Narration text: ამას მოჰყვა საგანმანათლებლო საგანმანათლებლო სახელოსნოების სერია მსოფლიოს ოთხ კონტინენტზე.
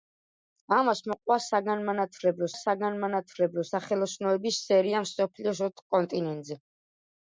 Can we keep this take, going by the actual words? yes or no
yes